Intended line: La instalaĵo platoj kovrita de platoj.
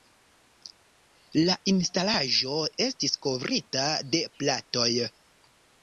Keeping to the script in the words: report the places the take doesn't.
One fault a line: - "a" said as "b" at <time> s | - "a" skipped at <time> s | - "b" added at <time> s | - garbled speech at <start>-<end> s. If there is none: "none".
- "platoj" said as "estis" at 2.9 s